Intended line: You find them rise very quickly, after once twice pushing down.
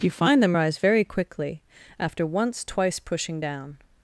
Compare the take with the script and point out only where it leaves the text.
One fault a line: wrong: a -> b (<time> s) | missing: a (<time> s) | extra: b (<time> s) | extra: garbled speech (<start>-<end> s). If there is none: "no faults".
no faults